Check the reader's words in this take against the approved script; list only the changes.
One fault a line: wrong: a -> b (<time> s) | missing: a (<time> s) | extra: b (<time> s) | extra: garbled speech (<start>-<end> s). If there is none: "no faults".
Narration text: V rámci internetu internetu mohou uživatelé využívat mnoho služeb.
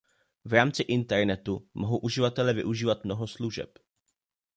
missing: internetu (1.7 s)